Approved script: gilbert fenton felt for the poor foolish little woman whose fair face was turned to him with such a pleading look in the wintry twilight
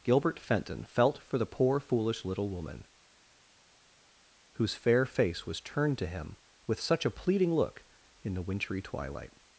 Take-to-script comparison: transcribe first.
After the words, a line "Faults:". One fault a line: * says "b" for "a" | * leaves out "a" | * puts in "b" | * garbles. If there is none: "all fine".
gilbert fenton felt for the poor foolish little woman whose fair face was turned to him with such a pleading look in the wintry twilight
Faults:
all fine